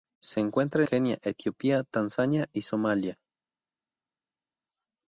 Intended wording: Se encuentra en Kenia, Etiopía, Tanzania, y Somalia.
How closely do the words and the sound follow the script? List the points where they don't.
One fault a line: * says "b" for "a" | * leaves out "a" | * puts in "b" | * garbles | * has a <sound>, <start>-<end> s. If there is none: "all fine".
* leaves out "en"